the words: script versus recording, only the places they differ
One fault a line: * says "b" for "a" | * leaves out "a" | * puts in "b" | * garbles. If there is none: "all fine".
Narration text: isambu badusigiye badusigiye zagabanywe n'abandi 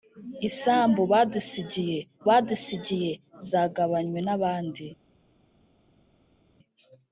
all fine